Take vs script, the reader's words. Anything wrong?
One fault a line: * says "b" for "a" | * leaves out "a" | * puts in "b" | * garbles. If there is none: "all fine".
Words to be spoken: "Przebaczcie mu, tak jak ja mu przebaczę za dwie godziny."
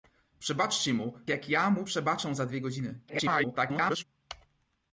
* leaves out "tak"
* garbles